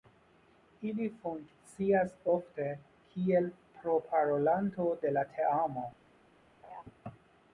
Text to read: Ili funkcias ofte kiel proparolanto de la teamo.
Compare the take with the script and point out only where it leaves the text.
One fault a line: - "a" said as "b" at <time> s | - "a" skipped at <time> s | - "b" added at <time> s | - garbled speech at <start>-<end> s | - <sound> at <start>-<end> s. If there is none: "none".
- laugh at 6.6-6.8 s